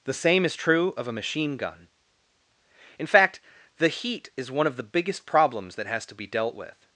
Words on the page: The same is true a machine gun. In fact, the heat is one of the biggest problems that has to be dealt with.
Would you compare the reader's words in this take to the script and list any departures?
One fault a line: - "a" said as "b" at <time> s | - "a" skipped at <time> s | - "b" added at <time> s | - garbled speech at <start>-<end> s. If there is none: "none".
- "of" added at 1.0 s